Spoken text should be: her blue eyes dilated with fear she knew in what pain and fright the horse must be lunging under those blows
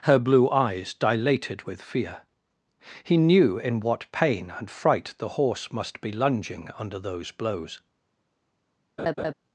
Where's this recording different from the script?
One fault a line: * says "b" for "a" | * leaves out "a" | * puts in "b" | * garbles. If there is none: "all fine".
* says "he" for "she"